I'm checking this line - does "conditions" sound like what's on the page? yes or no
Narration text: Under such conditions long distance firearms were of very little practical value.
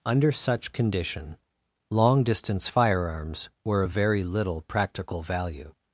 no